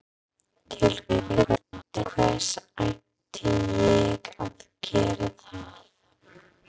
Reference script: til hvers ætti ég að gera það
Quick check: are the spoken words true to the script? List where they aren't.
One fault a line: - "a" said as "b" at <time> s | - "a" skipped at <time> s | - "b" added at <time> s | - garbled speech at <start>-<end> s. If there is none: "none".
- garbled speech at 1.1-2.0 s